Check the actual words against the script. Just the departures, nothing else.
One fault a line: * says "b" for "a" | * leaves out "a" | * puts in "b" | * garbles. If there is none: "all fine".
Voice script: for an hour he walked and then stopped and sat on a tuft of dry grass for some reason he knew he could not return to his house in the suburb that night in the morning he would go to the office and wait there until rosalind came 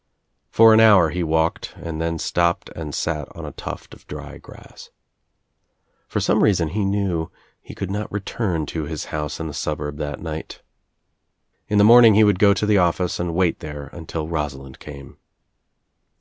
all fine